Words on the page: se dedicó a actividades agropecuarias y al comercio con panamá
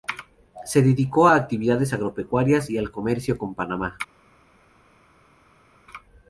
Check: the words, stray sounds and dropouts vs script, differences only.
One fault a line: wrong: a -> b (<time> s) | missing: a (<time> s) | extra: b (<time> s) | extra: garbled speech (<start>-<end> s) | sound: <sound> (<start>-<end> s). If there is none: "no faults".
no faults